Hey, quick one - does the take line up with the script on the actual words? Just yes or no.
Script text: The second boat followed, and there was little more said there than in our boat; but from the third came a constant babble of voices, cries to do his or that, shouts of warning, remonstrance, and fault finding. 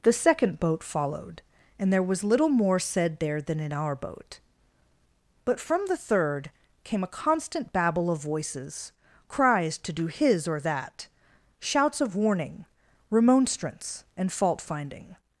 yes